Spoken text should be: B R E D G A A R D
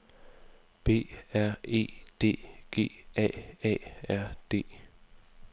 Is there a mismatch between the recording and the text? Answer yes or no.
no